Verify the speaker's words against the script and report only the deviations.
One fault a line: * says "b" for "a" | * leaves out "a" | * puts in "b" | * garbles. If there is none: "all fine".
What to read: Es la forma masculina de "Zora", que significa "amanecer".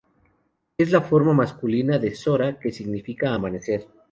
all fine